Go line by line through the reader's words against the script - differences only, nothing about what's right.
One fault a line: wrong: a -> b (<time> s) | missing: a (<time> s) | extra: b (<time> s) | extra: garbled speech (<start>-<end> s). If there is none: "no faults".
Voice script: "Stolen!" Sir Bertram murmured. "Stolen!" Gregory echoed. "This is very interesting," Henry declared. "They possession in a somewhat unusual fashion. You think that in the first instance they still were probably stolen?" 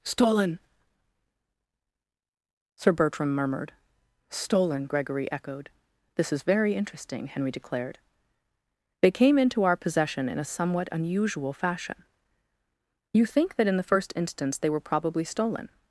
extra: came into our (9.1 s)
missing: still (14.7 s)